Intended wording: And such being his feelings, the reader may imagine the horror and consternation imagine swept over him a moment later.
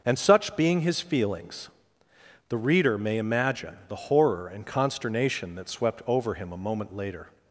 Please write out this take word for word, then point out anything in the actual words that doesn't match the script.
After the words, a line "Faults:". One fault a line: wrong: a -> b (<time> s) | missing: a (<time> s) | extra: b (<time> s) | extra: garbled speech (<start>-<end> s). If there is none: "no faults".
And such being his feelings, the reader may imagine the horror and consternation that swept over him a moment later.
Faults:
wrong: imagine -> that (5.5 s)